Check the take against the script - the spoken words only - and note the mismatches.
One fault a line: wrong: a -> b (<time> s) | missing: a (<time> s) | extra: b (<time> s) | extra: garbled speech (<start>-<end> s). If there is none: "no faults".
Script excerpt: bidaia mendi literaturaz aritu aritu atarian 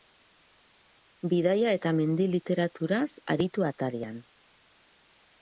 extra: eta (1.8 s)
missing: aritu (3.6 s)